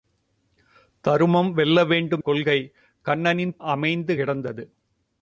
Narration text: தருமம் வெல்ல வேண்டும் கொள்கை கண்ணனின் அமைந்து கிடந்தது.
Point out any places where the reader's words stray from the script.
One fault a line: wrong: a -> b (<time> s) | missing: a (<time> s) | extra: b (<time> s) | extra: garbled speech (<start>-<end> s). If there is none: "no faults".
no faults